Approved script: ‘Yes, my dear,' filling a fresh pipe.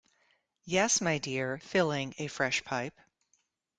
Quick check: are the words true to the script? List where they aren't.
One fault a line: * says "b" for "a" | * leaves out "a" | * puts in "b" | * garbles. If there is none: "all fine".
all fine